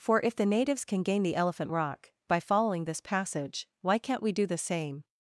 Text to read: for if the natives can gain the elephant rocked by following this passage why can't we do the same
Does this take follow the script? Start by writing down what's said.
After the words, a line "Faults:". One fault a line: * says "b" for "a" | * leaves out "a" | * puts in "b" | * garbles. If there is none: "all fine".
for if the natives can gain the elephant rock by following this passage why can't we do the same
Faults:
* says "rock" for "rocked"